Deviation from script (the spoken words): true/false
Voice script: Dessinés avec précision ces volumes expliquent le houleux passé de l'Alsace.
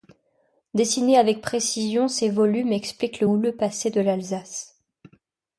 false